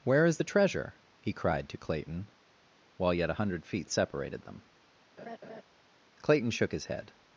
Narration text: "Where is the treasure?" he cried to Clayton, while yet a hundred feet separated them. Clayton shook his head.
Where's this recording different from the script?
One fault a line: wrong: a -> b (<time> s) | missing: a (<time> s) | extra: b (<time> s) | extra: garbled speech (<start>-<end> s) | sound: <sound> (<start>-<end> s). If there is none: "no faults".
sound: laugh (5.2-5.6 s)